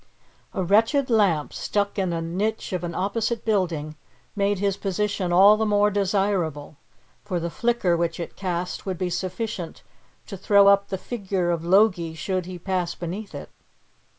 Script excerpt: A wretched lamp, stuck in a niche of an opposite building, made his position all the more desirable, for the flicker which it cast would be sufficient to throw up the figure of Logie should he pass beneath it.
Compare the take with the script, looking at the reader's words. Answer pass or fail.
pass